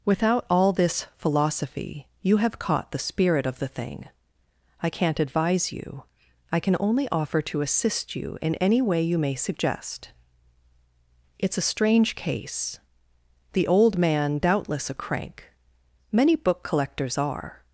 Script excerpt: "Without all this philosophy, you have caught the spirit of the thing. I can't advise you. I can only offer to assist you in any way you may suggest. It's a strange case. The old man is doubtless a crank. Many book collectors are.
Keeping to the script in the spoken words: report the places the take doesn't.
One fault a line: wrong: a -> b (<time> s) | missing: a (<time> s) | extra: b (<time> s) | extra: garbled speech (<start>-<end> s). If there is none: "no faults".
missing: is (14.4 s)